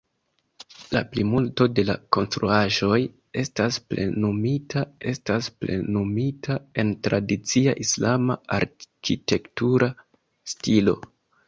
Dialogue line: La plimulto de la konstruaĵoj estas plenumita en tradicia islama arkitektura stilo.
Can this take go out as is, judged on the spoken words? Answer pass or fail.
fail